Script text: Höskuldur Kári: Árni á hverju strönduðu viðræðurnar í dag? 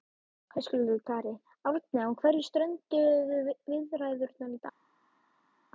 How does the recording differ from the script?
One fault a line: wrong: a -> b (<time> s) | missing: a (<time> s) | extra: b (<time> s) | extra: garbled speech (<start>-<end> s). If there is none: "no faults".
no faults